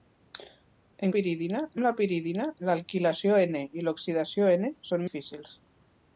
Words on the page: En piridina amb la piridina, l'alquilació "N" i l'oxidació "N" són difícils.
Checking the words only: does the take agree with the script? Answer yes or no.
yes